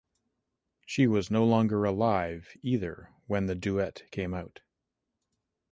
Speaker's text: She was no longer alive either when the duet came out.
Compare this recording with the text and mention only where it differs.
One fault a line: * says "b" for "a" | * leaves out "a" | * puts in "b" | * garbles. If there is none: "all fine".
all fine